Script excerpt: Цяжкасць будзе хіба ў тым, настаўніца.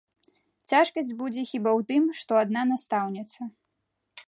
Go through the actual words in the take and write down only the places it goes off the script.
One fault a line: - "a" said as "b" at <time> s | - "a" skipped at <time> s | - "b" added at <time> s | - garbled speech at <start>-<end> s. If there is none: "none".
- "што адна" added at 2.2 s